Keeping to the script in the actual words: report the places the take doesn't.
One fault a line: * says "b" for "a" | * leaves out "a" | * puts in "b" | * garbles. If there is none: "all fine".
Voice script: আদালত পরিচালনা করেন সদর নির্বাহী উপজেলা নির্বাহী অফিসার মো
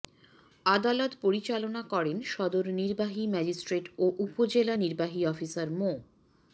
* puts in "ম্যাজিস্ট্রেট ও"